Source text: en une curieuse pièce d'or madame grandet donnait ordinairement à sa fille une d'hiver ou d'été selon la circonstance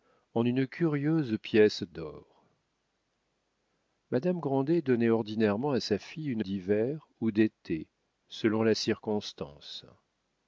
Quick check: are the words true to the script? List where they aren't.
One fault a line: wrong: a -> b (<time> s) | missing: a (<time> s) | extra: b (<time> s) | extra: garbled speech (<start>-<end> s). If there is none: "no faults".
no faults